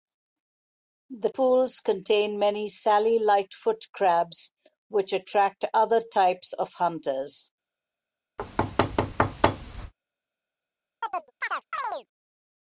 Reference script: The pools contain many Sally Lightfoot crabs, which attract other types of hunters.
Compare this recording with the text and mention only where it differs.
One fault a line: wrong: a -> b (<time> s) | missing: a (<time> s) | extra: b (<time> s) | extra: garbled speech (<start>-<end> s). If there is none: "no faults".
no faults